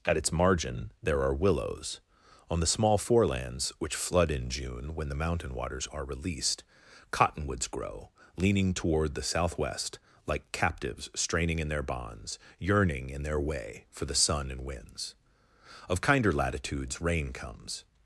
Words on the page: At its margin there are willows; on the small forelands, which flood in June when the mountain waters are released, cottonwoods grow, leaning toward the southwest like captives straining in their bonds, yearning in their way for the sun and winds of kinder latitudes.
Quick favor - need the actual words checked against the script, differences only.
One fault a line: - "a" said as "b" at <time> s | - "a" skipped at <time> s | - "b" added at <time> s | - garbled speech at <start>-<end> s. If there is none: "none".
- "Rain comes" added at 17.0 s